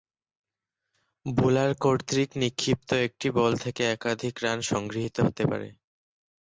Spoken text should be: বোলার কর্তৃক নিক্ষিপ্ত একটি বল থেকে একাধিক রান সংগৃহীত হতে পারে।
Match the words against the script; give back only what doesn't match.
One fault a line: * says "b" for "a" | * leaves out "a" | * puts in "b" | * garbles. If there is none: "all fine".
all fine